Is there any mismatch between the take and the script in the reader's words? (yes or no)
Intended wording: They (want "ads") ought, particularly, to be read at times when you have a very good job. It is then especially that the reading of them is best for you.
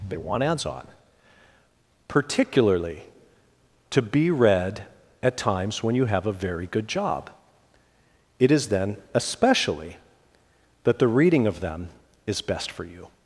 yes